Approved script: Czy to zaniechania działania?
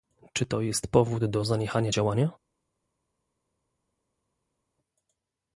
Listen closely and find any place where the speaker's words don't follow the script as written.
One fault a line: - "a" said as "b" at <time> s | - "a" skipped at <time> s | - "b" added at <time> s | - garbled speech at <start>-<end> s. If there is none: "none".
- "jest powód do" added at 0.6 s